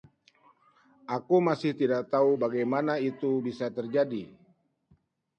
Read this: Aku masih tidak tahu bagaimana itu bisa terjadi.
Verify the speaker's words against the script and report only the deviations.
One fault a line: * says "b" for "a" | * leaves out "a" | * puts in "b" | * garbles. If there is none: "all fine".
all fine